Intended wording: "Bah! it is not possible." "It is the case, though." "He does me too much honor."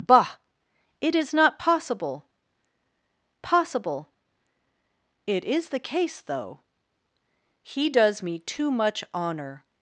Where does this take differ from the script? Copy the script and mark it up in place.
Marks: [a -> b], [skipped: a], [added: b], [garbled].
"Bah! it is not possible." [added: possible] "It is the case, though." "He does me too much honor."